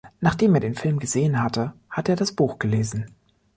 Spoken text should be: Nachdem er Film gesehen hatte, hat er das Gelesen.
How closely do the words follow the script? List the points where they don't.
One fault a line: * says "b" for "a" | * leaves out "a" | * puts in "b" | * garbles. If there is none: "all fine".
* puts in "den"
* puts in "Buch"